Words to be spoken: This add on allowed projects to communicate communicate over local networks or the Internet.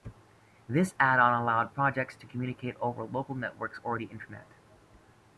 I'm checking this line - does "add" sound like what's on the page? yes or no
yes